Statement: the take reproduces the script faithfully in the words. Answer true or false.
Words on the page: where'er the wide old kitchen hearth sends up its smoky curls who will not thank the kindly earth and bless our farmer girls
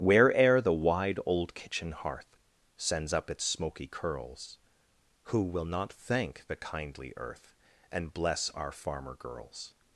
true